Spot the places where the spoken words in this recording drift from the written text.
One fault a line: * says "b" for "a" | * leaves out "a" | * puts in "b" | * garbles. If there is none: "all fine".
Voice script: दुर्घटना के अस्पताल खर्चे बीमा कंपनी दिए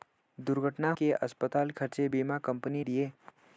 all fine